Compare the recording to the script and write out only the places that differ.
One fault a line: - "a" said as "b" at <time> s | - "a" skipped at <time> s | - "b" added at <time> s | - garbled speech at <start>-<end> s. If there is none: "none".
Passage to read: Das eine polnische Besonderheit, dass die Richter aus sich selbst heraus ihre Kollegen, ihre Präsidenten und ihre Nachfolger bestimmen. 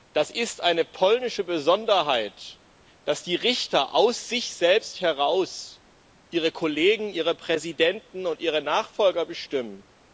- "ist" added at 0.3 s